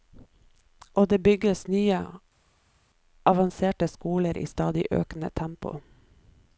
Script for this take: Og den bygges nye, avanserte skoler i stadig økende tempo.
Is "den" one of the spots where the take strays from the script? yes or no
yes